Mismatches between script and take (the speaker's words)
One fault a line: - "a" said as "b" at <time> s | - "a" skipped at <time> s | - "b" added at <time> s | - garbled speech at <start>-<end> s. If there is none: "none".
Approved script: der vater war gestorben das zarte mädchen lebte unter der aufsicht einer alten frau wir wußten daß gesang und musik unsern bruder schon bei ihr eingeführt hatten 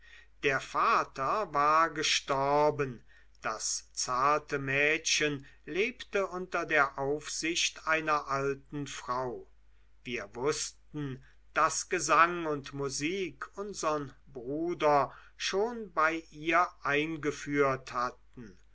none